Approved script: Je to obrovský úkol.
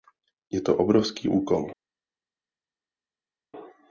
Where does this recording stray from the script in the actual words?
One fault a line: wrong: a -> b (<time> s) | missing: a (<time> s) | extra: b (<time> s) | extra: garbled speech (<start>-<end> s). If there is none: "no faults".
no faults